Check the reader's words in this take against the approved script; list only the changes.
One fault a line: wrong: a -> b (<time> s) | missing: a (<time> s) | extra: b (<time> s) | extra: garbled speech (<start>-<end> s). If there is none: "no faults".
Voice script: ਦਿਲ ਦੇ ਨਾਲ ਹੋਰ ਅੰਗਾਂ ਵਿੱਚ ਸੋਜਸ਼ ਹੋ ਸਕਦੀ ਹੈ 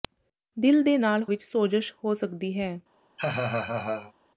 missing: ਹੋਰ ਅੰਗਾਂ (1.2 s)